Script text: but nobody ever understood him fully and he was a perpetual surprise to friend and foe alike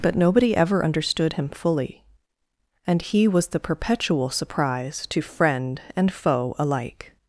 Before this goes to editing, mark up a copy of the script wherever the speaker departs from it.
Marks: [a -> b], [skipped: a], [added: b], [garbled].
but nobody ever understood him fully and he was [a -> the] perpetual surprise to friend and foe alike